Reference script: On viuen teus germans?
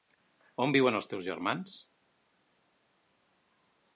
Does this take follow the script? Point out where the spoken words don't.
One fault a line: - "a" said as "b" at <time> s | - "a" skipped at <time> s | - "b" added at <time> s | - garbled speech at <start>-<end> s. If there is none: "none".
- "els" added at 1.0 s